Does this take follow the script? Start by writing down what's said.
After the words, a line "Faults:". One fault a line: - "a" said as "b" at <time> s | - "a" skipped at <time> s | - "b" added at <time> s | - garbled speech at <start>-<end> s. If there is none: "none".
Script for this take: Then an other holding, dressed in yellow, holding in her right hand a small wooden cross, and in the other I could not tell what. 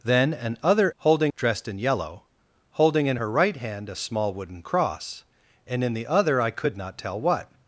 Then an other holding, dressed in yellow, holding in her right hand a small wooden cross, and in the other I could not tell what.
Faults:
none